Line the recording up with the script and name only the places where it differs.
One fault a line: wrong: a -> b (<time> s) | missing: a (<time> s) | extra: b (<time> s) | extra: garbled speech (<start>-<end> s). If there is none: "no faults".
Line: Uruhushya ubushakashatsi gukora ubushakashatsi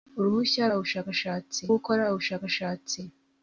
no faults